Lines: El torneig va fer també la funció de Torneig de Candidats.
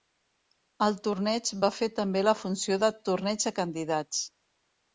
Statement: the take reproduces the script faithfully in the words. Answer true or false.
true